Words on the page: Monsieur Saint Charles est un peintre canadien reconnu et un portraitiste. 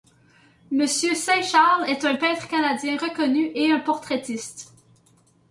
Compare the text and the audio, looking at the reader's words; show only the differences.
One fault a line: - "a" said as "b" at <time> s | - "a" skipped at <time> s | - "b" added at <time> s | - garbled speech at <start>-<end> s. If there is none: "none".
none